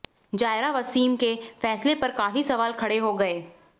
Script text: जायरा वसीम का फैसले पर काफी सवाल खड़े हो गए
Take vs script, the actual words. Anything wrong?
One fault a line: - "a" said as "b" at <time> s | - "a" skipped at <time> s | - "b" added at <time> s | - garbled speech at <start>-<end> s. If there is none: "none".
- "का" said as "के" at 1.2 s